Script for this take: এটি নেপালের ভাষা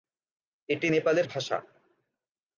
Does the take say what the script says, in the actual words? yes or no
yes